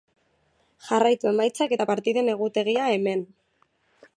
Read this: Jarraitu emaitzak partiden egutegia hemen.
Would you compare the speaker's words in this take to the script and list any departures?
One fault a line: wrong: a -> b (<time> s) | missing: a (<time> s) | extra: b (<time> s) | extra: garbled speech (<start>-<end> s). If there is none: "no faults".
extra: eta (1.7 s)